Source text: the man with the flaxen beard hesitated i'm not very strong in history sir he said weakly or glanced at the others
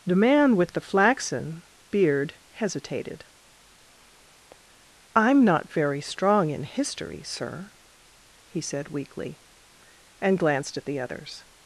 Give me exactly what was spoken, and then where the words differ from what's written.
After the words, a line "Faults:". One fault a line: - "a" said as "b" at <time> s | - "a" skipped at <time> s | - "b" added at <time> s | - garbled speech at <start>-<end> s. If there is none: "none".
the man with the flaxen beard hesitated i'm not very strong in history sir he said weakly and glanced at the others
Faults:
- "or" said as "and" at 10.2 s